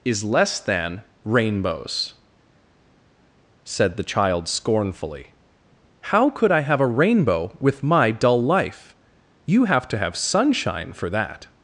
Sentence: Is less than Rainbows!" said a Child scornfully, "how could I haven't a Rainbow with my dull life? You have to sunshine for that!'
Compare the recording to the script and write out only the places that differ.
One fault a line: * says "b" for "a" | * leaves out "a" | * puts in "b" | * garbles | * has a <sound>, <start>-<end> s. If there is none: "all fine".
* says "the" for "a"
* says "have" for "haven't"
* puts in "have"